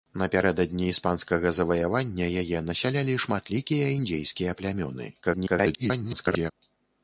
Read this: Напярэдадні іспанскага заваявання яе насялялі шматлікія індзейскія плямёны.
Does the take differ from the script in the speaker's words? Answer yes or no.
yes